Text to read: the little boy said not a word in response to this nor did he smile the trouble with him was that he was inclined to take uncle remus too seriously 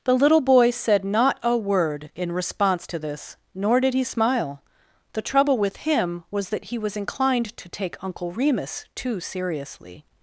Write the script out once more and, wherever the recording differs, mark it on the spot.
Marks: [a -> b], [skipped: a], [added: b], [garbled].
the little boy said not a word in response to this nor did he smile the trouble with him was that he was inclined to take uncle remus too seriously